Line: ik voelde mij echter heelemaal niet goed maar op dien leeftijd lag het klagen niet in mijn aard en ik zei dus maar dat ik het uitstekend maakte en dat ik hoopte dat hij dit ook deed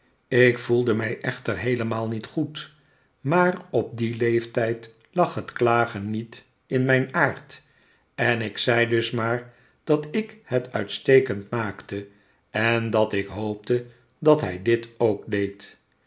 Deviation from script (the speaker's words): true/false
false